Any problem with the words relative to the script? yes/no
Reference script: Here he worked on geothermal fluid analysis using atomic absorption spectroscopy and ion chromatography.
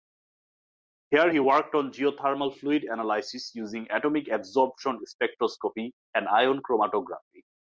no